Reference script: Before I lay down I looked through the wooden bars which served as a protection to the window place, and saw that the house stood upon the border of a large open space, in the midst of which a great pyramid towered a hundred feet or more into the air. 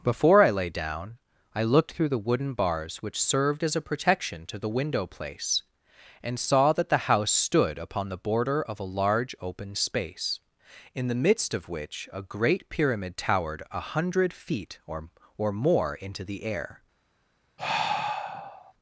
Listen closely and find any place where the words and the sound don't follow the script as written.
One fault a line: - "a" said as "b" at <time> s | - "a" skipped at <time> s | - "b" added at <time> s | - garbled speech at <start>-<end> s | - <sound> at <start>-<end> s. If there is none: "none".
- "or" added at 15.4 s
- sigh at 17.6-18.7 s